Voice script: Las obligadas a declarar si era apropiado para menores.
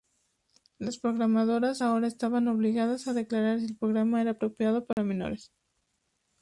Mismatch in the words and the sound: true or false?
true